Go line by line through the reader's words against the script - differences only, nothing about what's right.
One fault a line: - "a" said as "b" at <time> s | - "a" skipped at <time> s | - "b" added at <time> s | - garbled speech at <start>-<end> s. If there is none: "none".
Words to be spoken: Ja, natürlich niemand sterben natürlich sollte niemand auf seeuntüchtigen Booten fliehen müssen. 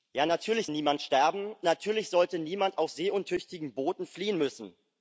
none